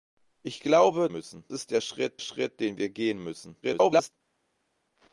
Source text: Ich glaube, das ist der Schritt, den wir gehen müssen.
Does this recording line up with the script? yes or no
no